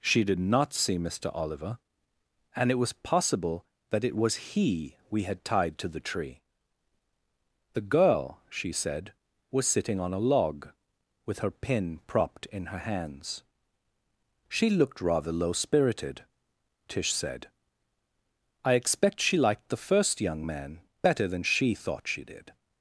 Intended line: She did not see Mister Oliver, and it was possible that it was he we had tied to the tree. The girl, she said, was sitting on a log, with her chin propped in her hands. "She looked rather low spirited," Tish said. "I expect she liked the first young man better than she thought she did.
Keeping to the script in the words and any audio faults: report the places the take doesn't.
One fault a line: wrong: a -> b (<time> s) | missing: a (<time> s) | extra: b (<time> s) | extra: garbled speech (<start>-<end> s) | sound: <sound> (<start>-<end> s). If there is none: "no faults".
wrong: chin -> pin (11.5 s)